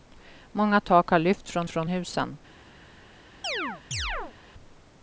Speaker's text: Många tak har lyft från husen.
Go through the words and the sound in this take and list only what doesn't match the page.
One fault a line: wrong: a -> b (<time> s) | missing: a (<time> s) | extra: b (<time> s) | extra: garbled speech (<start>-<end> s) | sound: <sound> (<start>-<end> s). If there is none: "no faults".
extra: från (1.7 s)
sound: chirp (3.4-4.4 s)